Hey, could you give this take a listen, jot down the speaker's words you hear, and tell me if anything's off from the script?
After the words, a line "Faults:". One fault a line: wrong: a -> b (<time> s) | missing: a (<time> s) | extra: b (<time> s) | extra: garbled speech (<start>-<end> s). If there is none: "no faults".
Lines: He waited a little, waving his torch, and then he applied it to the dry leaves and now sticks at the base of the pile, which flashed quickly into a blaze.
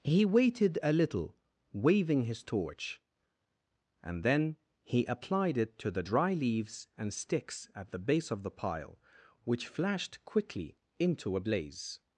He waited a little, waving his torch, and then he applied it to the dry leaves and sticks at the base of the pile, which flashed quickly into a blaze.
Faults:
missing: now (7.1 s)